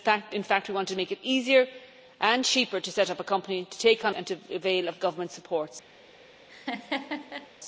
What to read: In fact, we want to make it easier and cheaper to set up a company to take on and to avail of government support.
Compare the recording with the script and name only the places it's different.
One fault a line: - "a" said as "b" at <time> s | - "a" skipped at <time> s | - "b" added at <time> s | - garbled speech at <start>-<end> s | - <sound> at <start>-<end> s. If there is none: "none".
- laugh at 6.5-7.5 s